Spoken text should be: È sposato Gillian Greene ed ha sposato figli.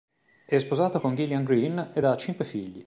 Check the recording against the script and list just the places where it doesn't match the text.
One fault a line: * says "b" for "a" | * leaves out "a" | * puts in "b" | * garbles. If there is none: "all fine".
* puts in "con"
* says "cinque" for "sposato"